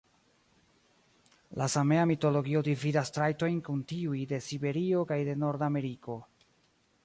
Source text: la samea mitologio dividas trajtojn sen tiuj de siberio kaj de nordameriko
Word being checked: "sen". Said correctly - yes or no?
no